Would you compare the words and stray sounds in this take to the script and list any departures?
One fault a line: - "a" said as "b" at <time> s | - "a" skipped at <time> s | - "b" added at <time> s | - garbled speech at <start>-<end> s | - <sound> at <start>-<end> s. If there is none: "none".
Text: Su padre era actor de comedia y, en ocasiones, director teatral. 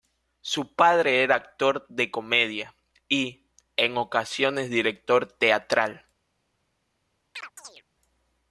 - chirp at 7.3-7.8 s